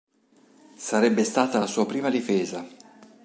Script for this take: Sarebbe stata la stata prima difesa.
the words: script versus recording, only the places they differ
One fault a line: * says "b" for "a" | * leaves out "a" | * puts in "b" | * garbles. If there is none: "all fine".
* says "sua" for "stata"